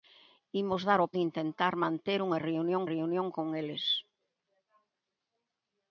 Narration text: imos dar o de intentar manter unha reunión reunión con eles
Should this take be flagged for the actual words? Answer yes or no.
no